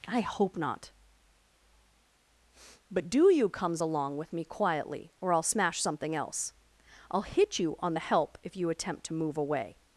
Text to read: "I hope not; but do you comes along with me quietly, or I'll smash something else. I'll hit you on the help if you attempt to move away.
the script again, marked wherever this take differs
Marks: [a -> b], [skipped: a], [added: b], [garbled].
"I hope not; but do you comes along with me quietly, or I'll smash something else. I'll hit you on the help if you attempt to move away.